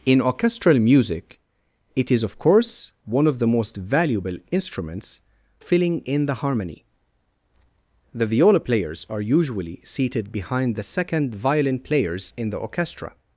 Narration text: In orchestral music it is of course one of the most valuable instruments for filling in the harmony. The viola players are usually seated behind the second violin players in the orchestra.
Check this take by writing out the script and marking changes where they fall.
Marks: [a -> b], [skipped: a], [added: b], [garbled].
In orchestral music it is of course one of the most valuable instruments [skipped: for] filling in the harmony. The viola players are usually seated behind the second violin players in the orchestra.